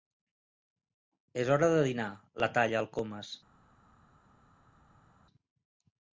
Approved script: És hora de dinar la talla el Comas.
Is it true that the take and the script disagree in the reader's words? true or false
false